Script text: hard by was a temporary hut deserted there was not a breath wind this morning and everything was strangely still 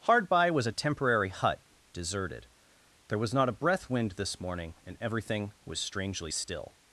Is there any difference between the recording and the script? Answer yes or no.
no